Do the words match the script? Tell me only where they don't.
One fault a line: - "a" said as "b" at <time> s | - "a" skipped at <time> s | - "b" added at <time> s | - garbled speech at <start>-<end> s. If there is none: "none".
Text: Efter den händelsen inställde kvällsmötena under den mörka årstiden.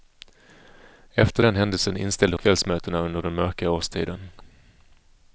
none